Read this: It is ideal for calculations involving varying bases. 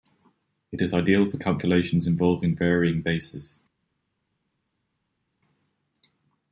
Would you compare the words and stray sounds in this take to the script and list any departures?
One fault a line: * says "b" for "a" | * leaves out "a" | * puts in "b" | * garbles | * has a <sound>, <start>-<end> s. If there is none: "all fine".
all fine